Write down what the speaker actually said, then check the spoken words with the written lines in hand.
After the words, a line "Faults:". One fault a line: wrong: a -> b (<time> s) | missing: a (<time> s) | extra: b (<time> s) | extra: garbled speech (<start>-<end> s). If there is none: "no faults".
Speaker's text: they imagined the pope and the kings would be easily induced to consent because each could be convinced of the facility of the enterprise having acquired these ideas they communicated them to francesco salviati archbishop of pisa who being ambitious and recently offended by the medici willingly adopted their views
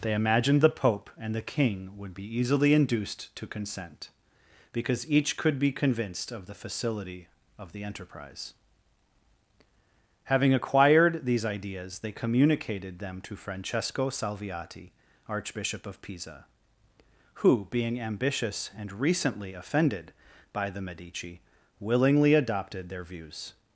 they imagined the pope and the king would be easily induced to consent because each could be convinced of the facility of the enterprise having acquired these ideas they communicated them to francesco salviati archbishop of pisa who being ambitious and recently offended by the medici willingly adopted their views
Faults:
wrong: kings -> king (1.4 s)